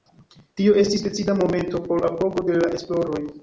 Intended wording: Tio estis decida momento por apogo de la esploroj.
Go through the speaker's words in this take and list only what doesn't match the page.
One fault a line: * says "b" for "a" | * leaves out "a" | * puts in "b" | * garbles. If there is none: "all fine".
all fine